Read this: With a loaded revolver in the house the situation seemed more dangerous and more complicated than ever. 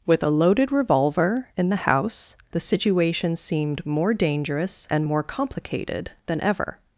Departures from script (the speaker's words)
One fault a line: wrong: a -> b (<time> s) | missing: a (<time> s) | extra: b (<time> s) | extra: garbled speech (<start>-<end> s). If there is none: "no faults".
no faults